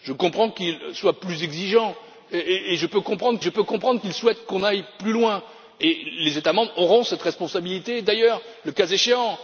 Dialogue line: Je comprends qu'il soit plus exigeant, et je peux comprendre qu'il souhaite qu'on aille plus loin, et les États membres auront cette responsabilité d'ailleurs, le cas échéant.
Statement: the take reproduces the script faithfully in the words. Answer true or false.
false